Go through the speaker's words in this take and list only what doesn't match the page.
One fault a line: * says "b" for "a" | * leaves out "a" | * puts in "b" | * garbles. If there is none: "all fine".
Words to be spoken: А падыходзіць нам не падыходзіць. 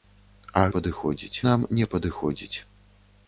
all fine